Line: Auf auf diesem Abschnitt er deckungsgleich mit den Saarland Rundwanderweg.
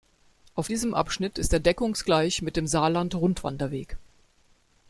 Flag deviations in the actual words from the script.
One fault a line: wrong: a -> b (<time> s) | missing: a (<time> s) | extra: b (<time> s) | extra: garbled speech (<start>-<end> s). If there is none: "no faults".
missing: auf (0.7 s)
extra: ist (1.4 s)
wrong: den -> dem (2.6 s)